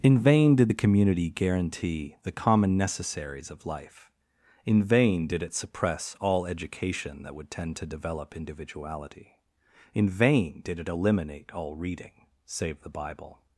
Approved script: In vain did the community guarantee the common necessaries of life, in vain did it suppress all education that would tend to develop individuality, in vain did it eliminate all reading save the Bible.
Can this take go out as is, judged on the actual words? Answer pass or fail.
pass